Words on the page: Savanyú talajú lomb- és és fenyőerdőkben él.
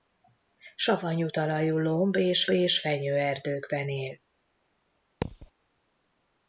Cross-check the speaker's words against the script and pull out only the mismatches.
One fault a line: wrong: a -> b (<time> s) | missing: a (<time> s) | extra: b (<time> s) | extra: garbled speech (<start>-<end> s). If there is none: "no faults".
no faults